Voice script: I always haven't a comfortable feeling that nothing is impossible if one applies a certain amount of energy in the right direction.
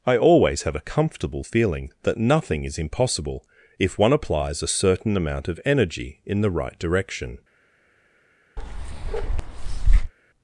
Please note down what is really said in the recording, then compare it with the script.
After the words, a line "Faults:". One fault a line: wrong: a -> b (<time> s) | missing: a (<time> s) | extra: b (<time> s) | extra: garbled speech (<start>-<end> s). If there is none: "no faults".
I always have a comfortable feeling that nothing is impossible if one applies a certain amount of energy in the right direction.
Faults:
wrong: haven't -> have (0.6 s)